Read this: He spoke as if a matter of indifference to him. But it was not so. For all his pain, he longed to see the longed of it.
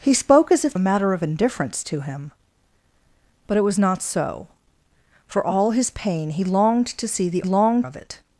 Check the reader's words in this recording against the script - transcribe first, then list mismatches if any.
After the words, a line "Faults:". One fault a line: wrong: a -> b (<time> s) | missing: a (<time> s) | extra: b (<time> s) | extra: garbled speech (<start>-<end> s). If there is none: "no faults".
He spoke as if a matter of indifference to him. But it was not so. For all his pain, he longed to see the longed of it.
Faults:
no faults